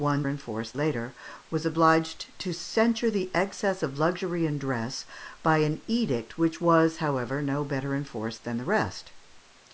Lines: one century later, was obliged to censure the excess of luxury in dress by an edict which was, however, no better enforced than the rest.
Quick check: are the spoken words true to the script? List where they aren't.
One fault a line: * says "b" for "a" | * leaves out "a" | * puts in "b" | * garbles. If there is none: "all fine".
* says "enforced" for "century"